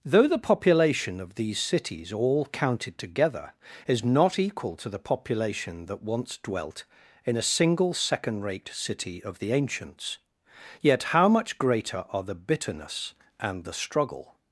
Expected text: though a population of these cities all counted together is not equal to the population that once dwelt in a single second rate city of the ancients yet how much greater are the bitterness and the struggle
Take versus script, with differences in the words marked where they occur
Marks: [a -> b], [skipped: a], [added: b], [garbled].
though [a -> the] population of these cities all counted together is not equal to the population that once dwelt in a single second rate city of the ancients yet how much greater are the bitterness and the struggle